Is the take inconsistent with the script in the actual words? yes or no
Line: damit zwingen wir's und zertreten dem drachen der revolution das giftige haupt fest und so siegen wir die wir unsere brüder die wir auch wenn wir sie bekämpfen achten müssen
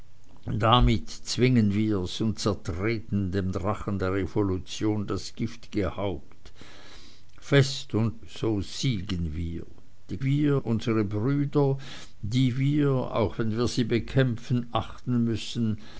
no